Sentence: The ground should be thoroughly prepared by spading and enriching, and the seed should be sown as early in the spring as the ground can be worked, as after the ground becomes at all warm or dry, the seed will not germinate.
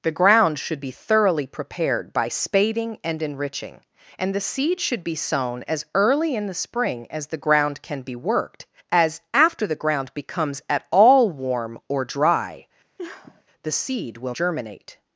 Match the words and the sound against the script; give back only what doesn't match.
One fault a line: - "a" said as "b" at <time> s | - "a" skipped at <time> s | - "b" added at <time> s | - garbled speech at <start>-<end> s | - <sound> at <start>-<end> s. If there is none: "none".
- sniff at 13.0-13.4 s
- "not" skipped at 14.3 s